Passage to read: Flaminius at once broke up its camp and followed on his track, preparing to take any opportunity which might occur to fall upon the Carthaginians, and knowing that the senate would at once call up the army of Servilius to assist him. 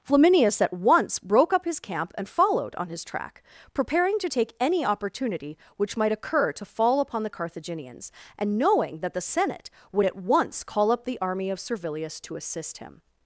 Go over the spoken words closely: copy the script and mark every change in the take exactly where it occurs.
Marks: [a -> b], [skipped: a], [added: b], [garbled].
Flaminius at once broke up [its -> his] camp and followed on his track, preparing to take any opportunity which might occur to fall upon the Carthaginians, and knowing that the senate would at once call up the army of Servilius to assist him.